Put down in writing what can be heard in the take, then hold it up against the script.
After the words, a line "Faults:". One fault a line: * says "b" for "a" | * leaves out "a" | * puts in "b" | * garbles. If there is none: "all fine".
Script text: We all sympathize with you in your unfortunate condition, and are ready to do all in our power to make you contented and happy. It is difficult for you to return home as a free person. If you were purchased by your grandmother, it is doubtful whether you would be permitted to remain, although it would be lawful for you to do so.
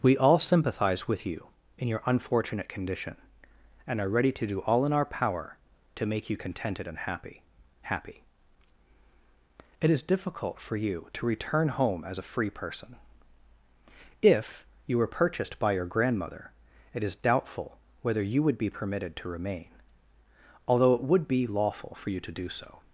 We all sympathize with you in your unfortunate condition, and are ready to do all in our power to make you contented and happy happy. It is difficult for you to return home as a free person. If you were purchased by your grandmother, it is doubtful whether you would be permitted to remain, although it would be lawful for you to do so.
Faults:
* puts in "happy"